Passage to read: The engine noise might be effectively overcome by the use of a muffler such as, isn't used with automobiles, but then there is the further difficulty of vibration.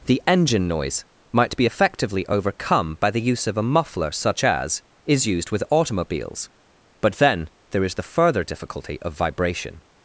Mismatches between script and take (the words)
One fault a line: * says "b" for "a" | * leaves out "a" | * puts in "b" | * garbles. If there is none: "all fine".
* says "is" for "isn't"